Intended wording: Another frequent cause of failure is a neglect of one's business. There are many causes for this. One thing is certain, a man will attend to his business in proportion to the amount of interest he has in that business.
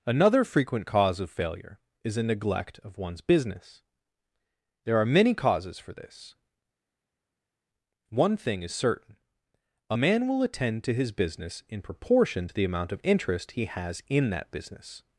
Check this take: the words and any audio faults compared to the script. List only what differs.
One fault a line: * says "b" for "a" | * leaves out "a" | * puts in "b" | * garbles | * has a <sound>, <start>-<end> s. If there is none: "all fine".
all fine